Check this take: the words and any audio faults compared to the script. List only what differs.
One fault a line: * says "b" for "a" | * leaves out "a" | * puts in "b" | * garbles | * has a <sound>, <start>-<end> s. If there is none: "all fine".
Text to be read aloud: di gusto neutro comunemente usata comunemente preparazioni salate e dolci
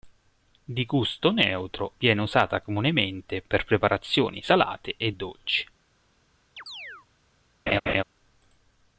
* says "viene" for "comunemente"
* puts in "per"
* has a chirp, 6.6-7.1 s
* has a laugh, 7.7-8.0 s